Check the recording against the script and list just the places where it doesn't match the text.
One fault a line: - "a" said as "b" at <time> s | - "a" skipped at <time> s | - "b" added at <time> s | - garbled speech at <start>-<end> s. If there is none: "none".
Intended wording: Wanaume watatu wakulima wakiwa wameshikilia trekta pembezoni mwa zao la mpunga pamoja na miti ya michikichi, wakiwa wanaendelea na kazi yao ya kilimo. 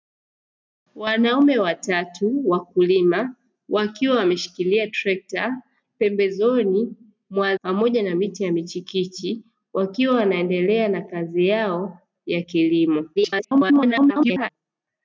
- "zao la mpunga" skipped at 7.6 s
- garbled speech at 13.2-14.5 s